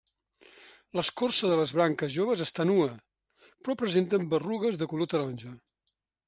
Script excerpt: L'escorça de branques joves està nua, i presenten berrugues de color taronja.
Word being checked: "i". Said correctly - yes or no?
no